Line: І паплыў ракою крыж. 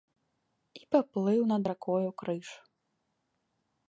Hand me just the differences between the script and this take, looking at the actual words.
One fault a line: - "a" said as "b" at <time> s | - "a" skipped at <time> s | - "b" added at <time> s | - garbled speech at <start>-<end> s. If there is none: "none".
- "над" added at 1.5 s